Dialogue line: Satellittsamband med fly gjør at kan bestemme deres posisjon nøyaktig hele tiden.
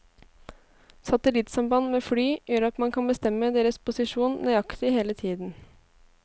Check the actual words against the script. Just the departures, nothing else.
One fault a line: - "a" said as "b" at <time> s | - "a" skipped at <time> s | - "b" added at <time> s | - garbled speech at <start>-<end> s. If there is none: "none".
- "man" added at 2.8 s